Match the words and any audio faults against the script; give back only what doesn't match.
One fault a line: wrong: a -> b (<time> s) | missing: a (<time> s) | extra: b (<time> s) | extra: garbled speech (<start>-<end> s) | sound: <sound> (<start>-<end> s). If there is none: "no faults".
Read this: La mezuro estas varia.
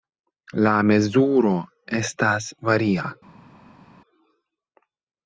no faults